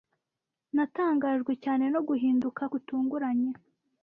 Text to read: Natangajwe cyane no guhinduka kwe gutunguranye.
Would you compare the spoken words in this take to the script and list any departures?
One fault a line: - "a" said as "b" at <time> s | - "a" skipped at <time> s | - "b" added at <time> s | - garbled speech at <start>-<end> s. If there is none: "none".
- "kwe" skipped at 2.6 s